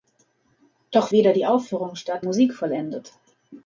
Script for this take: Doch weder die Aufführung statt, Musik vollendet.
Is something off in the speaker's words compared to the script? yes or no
no